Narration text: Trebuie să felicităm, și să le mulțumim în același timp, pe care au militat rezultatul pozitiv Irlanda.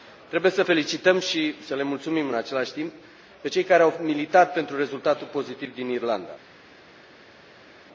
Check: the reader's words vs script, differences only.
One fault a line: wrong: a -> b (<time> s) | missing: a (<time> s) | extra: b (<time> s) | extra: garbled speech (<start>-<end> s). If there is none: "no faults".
extra: cei (3.5 s)
extra: pentru (4.5 s)
extra: din (5.7 s)